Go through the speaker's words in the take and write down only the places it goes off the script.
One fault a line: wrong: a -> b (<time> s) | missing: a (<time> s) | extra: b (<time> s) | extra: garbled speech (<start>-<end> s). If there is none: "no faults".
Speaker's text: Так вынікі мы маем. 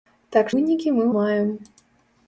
no faults